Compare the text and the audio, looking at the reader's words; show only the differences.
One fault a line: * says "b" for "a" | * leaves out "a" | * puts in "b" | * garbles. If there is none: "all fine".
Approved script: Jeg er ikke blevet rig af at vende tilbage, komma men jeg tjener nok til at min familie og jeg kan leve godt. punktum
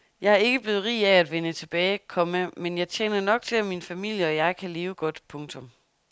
all fine